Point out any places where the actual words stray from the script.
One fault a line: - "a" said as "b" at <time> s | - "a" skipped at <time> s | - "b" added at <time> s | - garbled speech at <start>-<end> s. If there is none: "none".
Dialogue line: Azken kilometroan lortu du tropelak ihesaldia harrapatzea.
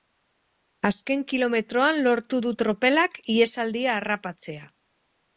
none